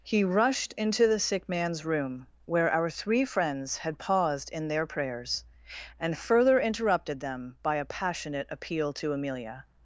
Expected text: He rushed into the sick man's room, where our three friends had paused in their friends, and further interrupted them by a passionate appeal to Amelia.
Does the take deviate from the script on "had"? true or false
false